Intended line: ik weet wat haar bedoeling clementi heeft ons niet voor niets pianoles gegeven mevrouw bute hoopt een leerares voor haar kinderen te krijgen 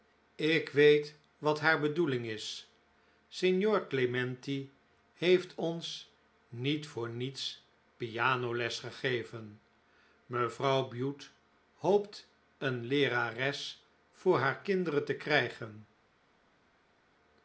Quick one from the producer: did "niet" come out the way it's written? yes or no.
yes